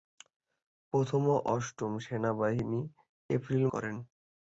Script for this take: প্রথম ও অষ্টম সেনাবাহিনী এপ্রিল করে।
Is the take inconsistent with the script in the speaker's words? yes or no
no